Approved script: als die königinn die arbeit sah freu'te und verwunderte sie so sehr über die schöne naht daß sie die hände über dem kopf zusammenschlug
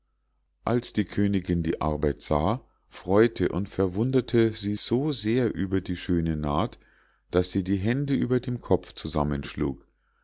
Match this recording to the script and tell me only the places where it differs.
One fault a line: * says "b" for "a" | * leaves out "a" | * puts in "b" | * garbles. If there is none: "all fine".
all fine